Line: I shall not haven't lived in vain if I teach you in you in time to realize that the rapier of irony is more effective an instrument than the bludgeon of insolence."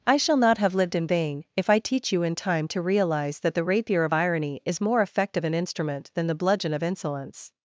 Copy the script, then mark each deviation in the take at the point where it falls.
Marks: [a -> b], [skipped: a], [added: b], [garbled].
I shall not [haven't -> have] lived in vain if I teach you in [skipped: you in] time to realize that the rapier of irony is more effective an instrument than the bludgeon of insolence."